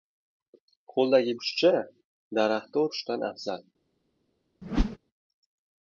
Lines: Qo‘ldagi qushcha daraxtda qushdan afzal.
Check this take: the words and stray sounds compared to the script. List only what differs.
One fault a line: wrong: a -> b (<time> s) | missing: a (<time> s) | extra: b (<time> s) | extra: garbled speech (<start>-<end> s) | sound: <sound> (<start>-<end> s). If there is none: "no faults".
sound: whoosh (4.6-5.0 s)